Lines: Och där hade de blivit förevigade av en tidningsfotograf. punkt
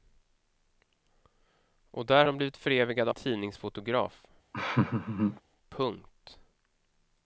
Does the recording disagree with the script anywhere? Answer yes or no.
yes